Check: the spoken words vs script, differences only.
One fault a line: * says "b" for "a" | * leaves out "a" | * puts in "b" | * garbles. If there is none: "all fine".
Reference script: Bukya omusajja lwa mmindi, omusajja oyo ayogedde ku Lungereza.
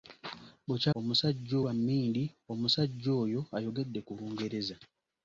all fine